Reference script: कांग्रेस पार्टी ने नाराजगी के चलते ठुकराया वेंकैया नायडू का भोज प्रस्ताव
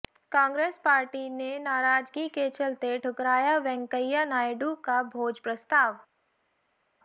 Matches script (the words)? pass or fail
pass